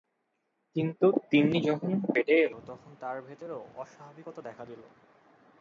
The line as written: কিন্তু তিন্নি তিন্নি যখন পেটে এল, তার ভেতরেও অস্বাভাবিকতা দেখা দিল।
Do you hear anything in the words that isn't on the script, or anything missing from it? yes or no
yes